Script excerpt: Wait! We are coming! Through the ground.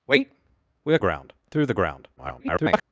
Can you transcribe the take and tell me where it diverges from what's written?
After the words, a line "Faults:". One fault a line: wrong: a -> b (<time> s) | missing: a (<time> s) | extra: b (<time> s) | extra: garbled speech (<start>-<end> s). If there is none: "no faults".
Wait! We are ground! Through the ground. [garbled]
Faults:
wrong: coming -> ground (1.0 s)
extra: garbled speech (2.2-2.8 s)